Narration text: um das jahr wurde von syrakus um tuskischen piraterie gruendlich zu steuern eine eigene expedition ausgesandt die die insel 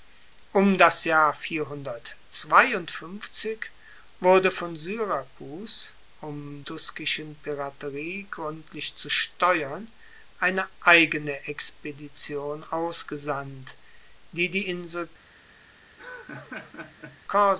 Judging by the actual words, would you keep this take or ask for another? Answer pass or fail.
pass